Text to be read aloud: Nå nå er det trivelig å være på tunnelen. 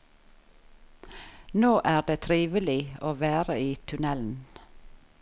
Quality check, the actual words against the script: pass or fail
fail